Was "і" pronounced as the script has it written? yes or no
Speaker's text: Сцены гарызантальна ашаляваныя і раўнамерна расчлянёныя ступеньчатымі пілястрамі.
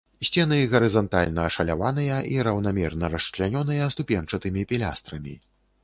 yes